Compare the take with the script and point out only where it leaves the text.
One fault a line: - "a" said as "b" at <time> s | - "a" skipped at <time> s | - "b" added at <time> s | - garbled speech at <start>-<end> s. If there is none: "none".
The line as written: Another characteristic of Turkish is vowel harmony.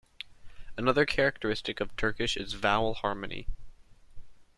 none